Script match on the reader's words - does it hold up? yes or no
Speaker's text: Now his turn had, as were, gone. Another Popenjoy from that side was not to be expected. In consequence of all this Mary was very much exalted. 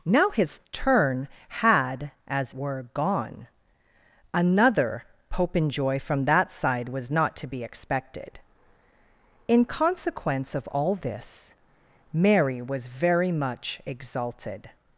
yes